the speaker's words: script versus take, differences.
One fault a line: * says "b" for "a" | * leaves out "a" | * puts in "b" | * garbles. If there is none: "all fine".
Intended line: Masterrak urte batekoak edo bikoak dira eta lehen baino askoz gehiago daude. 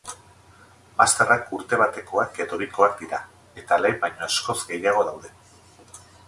all fine